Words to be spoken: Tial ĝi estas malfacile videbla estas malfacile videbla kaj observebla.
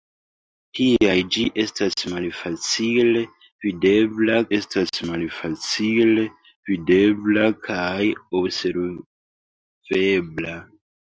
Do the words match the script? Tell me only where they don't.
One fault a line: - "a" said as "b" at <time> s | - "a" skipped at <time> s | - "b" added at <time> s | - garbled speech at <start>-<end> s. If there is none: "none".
none